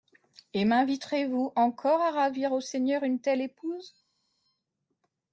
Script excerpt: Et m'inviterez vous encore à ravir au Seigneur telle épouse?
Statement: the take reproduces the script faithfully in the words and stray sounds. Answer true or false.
false